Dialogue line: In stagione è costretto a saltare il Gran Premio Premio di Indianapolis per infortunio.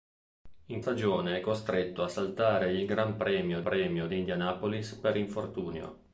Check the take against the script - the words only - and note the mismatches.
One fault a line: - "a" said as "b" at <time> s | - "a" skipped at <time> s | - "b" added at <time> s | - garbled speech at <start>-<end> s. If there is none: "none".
none